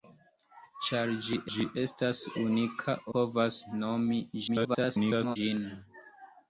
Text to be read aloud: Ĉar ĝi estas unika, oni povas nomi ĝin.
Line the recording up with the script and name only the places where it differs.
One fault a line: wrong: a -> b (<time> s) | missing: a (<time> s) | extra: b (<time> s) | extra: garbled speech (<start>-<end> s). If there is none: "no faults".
extra: ĝi (1.5 s)
missing: oni (3.0 s)
extra: garbled speech (4.5-5.4 s)